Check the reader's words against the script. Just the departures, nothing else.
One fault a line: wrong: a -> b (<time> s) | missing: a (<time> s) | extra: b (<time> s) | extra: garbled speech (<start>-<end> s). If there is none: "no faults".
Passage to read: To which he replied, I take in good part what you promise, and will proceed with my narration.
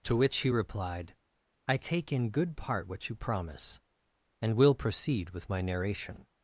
no faults